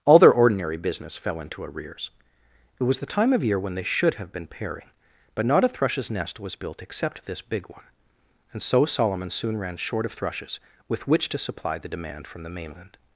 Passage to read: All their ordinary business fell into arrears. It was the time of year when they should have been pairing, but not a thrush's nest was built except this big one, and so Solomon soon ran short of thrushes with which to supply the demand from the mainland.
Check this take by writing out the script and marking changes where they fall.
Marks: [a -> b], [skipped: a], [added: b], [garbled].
All their ordinary business fell into arrears. It was the time of year when they should have been pairing, but not a thrush's nest was built except this big one, and so Solomon soon ran short of thrushes with which to supply the demand from the mainland.